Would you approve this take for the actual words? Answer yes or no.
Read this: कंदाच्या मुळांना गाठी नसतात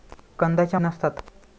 no